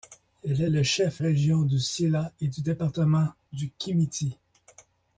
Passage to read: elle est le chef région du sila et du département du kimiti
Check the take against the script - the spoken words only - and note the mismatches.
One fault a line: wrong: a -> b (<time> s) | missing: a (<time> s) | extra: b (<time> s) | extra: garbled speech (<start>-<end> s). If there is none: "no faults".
no faults